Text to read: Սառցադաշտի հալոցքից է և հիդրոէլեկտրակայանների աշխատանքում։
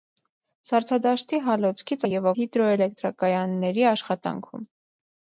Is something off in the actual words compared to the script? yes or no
no